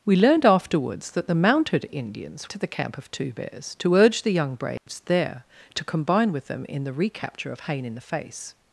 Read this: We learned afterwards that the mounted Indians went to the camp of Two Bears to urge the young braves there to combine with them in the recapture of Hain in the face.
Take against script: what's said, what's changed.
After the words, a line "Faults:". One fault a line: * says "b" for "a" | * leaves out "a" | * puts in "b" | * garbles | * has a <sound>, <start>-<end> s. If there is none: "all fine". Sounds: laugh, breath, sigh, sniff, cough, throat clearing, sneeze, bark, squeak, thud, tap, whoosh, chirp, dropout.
We learned afterwards that the mounted Indians to the camp of Two Bears to urge the young braves there to combine with them in the recapture of Hain in the face.
Faults:
* leaves out "went"
* has a dropout, 4.8-4.9 s